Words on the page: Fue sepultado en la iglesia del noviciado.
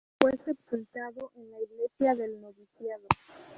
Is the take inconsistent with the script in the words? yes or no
no